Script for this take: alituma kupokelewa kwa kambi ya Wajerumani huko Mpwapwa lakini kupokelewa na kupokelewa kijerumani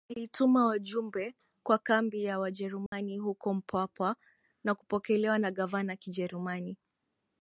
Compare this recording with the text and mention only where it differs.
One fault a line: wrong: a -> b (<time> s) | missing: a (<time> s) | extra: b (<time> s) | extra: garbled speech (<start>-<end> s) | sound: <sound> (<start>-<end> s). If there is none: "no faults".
wrong: kupokelewa -> wajumbe (0.7 s)
sound: dropout (2.9-2.9 s)
wrong: lakini -> na (4.6 s)
wrong: kupokelewa -> gavana (5.5 s)